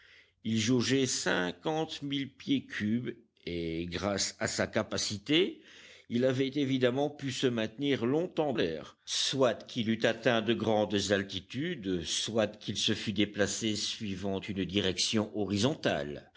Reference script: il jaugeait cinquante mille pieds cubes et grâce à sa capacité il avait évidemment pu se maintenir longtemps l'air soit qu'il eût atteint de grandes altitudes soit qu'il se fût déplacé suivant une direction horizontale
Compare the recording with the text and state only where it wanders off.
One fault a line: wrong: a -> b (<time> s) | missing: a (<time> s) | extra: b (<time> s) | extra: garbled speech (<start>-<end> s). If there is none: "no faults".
no faults